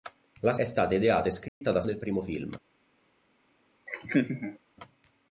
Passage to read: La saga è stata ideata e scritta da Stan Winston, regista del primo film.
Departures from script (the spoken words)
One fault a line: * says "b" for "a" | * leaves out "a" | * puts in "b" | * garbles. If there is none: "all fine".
* leaves out "saga"
* leaves out "Stan Winston regista"